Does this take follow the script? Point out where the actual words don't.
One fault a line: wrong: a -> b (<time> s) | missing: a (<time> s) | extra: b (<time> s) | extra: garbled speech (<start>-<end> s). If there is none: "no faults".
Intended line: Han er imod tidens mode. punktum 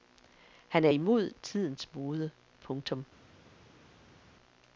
no faults